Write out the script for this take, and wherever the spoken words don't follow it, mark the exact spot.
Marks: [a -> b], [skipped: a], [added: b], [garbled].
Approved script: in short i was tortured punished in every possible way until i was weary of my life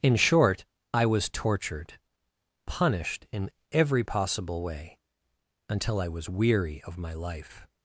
in short i was tortured punished in every possible way until i was weary of my life